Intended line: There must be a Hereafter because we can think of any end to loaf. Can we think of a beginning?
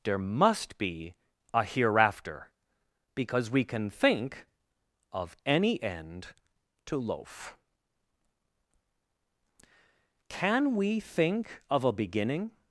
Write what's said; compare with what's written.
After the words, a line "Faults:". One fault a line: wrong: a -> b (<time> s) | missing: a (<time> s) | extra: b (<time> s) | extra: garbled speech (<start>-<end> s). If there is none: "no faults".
There must be a Hereafter because we can think of any end to loaf. Can we think of a beginning?
Faults:
no faults